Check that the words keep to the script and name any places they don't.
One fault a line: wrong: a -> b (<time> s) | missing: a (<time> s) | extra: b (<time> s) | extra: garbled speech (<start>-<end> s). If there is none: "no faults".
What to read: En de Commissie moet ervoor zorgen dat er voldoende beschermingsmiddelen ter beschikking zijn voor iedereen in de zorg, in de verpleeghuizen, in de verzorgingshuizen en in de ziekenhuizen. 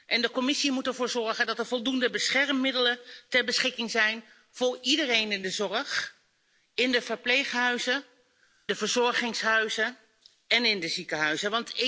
missing: in (8.0 s)